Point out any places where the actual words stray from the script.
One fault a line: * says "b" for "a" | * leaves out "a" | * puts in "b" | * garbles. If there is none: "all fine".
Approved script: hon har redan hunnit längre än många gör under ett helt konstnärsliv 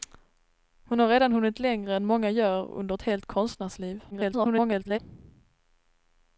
* garbles